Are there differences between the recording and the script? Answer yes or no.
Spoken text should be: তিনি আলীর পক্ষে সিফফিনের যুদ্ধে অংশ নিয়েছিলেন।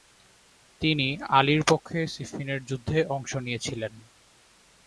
no